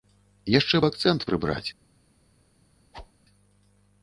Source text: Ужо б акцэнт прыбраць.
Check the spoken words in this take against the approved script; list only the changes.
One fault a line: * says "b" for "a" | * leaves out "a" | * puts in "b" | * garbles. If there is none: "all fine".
* says "Яшчэ" for "Ужо"